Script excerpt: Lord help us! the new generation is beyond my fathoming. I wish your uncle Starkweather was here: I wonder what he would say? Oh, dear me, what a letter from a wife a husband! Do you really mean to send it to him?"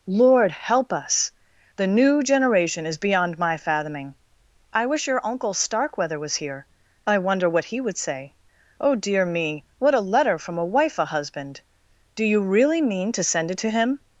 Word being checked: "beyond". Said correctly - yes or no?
yes